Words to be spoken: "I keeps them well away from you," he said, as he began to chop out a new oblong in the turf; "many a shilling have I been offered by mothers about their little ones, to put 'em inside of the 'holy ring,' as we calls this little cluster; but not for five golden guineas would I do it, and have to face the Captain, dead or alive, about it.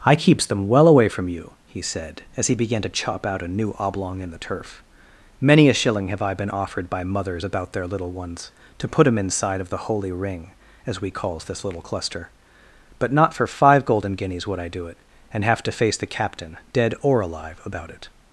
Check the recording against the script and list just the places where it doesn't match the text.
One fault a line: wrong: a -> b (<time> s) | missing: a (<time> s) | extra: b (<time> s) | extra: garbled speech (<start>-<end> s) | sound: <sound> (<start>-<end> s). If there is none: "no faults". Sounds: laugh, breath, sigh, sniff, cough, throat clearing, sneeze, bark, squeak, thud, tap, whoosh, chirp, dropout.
no faults